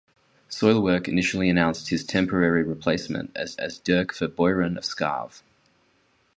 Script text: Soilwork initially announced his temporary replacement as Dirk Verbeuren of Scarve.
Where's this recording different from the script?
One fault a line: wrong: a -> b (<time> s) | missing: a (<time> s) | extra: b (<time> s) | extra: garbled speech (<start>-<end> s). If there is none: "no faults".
extra: as (3.6 s)